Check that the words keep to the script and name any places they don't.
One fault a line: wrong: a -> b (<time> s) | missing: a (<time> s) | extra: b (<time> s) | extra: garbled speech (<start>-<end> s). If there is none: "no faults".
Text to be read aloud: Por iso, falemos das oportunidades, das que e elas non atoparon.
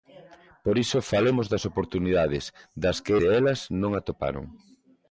no faults